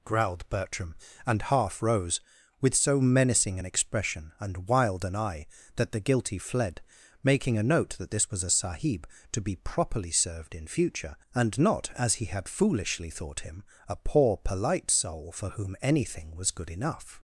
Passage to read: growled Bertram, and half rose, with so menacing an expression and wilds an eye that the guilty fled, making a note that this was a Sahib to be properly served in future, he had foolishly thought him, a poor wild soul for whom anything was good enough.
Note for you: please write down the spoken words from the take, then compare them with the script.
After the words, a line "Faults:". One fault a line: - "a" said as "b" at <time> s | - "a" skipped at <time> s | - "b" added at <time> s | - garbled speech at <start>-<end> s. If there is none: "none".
growled Bertram, and half rose, with so menacing an expression and wild an eye that the guilty fled, making a note that this was a Sahib to be properly served in future, and not, as he had foolishly thought him, a poor polite soul for whom anything was good enough.
Faults:
- "wilds" said as "wild" at 4.7 s
- "and not as" added at 11.3 s
- "wild" said as "polite" at 14.4 s